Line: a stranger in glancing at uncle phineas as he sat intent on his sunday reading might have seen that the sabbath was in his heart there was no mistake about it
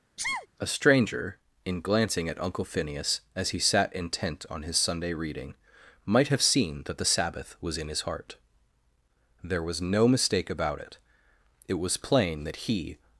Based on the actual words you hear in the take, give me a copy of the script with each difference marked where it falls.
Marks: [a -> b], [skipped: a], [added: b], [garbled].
a stranger in glancing at uncle phineas as he sat intent on his sunday reading might have seen that the sabbath was in his heart there was no mistake about it [added: it was plain that he]